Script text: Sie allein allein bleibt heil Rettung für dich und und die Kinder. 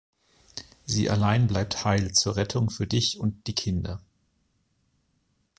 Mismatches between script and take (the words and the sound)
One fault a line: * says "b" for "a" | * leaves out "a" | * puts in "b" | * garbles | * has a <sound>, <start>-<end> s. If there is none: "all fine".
* leaves out "allein"
* puts in "zur"
* leaves out "und"